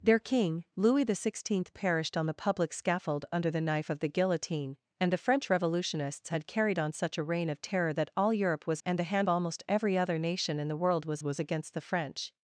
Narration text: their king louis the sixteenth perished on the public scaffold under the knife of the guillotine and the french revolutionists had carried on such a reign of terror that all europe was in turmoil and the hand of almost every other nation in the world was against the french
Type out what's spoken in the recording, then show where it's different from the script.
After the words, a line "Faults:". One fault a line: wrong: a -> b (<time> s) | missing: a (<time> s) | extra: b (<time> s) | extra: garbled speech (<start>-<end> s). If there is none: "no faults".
their king louis the sixteenth perished on the public scaffold under the knife of the guillotine and the french revolutionists had carried on such a reign of terror that all europe was and the hand almost every other nation in the world was was against the french
Faults:
missing: in turmoil (8.8 s)
missing: of (9.3 s)
extra: was (11.2 s)